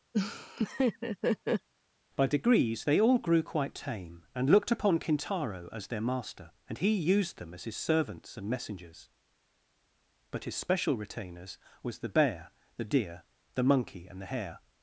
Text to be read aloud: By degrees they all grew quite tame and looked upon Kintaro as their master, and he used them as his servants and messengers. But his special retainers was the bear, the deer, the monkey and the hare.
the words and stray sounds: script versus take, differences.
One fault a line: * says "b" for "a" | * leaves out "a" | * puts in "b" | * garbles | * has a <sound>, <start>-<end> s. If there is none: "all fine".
* has a laugh, 0.1-1.7 s